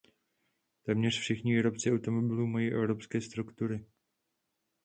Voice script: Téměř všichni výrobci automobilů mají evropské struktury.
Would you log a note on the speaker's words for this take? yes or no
no